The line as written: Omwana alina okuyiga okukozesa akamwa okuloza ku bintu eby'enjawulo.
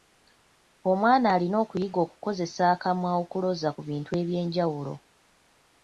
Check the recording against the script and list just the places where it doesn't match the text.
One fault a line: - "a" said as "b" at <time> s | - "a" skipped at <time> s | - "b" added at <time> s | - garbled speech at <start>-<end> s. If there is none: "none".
none